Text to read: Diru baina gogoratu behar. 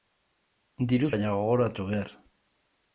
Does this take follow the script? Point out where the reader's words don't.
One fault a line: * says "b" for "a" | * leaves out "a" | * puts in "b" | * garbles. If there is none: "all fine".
all fine